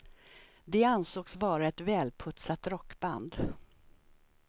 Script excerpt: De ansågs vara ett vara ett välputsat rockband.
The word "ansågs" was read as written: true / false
true